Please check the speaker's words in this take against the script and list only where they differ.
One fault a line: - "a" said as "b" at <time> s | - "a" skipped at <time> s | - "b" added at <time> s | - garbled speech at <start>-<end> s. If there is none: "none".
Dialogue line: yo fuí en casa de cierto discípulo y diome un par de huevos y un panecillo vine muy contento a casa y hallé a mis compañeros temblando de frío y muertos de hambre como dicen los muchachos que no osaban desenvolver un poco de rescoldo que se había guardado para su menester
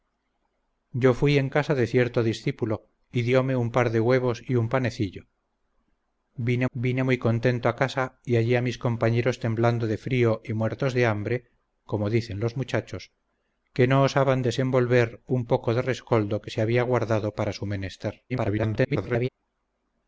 - "vine" added at 6.7 s
- garbled speech at 18.3-19.3 s